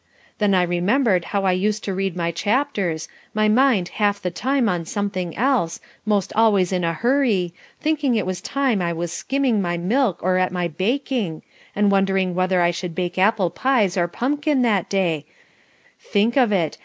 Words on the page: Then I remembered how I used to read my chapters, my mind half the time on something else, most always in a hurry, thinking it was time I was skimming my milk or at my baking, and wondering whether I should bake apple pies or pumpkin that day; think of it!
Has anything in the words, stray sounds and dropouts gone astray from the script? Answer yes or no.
no